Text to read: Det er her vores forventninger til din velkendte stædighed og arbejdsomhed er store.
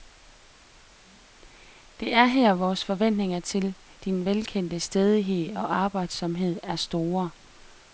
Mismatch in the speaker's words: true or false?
false